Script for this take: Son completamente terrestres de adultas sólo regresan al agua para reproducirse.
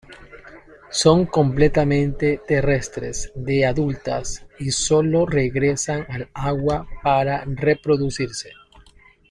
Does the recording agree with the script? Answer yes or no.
no